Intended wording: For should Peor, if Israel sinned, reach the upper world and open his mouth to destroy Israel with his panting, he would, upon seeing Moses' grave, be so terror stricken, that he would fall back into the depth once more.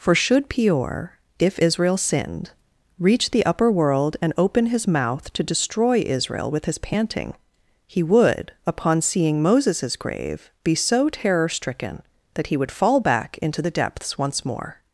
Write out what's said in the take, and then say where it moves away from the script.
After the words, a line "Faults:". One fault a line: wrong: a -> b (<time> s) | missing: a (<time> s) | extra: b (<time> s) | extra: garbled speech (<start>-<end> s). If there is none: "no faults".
For should Peor, if Israel sinned, reach the upper world and open his mouth to destroy Israel with his panting, he would, upon seeing Moses' grave, be so terror stricken, that he would fall back into the depths once more.
Faults:
wrong: depth -> depths (13.7 s)